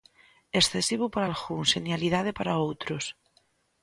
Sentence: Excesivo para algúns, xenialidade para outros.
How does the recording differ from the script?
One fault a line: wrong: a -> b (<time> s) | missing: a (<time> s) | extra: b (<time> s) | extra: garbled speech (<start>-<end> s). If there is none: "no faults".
no faults